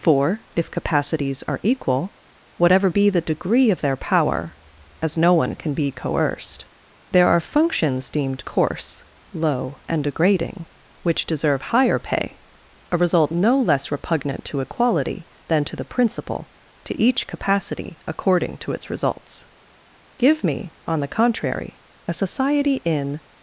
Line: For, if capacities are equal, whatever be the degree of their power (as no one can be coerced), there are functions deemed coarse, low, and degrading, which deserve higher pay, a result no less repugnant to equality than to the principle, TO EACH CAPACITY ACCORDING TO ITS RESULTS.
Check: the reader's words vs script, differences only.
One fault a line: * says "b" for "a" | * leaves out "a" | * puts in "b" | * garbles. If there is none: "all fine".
* puts in "Give me on the contrary a society in"